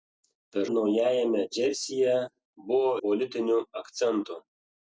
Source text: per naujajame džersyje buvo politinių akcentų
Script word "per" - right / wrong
right